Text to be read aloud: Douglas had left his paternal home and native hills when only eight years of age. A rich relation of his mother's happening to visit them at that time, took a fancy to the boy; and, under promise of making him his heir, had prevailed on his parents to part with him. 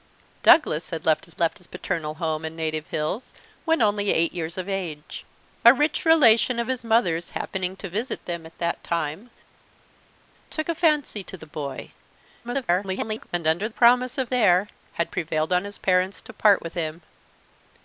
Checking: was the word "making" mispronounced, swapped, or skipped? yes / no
yes